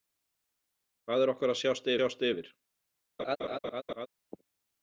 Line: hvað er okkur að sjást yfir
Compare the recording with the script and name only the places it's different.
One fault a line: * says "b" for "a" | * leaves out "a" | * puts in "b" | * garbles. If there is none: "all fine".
* puts in "sjást"